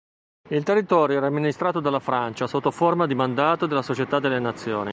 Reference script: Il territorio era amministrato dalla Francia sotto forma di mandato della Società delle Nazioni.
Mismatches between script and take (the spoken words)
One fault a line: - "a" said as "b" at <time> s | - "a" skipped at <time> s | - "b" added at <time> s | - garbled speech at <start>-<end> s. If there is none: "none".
none